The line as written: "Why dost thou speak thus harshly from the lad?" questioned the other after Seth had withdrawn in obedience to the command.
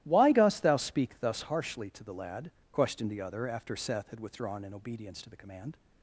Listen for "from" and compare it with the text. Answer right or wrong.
wrong